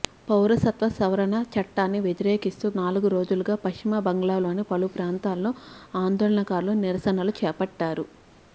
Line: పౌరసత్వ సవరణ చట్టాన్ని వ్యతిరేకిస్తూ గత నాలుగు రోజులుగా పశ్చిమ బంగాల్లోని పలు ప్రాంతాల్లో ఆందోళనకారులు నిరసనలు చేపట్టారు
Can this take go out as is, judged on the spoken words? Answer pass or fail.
fail